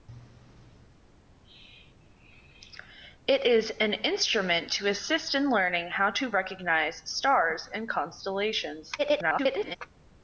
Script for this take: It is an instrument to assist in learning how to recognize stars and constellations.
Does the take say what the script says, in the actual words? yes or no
no